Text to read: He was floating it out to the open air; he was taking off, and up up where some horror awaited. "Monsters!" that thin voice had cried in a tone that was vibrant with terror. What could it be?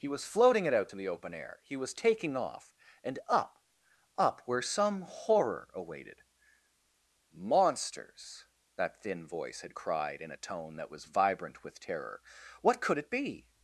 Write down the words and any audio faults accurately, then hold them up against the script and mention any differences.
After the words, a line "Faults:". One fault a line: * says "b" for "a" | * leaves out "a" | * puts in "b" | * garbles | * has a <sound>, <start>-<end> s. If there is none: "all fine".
He was floating it out to the open air; he was taking off, and up up where some horror awaited. "Monsters!" that thin voice had cried in a tone that was vibrant with terror. What could it be?
Faults:
all fine